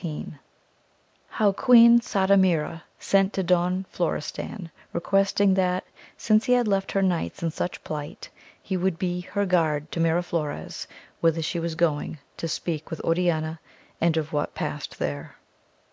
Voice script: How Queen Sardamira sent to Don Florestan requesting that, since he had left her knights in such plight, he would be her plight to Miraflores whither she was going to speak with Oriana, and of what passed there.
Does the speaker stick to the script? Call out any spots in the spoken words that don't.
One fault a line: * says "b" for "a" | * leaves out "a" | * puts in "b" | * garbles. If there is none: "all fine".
* says "guard" for "plight"